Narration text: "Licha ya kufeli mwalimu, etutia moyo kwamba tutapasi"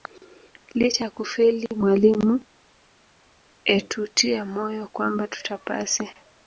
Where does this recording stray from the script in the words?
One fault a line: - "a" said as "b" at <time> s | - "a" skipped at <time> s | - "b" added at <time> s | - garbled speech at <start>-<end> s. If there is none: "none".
none